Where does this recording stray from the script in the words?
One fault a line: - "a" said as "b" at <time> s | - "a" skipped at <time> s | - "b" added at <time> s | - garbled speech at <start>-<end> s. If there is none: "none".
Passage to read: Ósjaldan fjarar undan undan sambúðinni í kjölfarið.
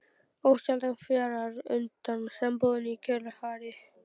- "undan" skipped at 2.3 s